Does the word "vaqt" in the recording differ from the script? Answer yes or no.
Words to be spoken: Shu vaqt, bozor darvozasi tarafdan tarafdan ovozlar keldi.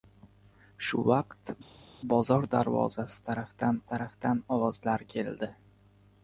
no